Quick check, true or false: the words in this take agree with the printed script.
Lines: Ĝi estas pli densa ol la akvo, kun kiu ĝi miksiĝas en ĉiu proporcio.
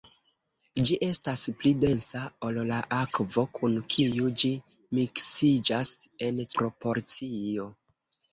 false